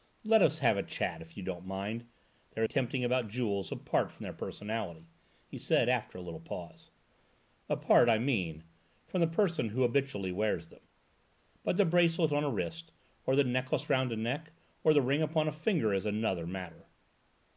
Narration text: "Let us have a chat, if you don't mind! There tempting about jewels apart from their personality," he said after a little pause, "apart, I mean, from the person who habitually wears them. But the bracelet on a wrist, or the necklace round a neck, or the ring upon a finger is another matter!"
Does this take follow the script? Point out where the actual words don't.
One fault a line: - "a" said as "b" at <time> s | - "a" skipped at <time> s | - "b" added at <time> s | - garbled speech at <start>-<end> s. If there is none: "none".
none